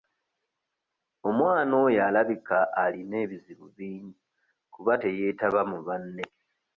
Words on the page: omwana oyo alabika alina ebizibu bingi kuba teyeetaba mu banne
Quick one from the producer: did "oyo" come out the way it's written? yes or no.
yes